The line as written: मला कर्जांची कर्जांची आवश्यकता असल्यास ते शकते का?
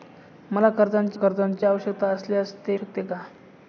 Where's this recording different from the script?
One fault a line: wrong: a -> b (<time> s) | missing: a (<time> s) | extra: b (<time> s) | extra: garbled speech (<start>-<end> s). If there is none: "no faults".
no faults